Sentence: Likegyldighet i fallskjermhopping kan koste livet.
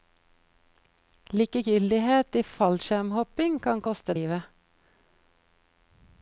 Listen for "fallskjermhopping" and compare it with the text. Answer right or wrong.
right